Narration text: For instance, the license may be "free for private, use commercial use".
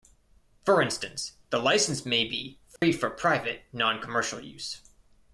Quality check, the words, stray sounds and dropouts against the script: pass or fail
fail